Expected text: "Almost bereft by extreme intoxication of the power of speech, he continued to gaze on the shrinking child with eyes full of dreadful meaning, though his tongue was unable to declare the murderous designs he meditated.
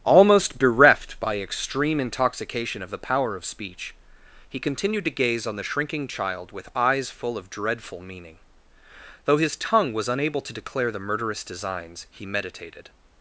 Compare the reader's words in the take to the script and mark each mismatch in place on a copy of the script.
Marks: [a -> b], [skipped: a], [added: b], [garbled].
"Almost bereft by extreme intoxication of the power of speech, he continued to gaze on the shrinking child with eyes full of dreadful meaning, though his tongue was unable to declare the murderous designs he meditated.